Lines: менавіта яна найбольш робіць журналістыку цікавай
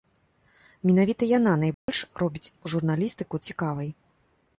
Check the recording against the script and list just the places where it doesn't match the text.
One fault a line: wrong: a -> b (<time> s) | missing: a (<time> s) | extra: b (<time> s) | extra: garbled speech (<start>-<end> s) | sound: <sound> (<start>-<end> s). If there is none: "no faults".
sound: dropout (1.7-1.9 s)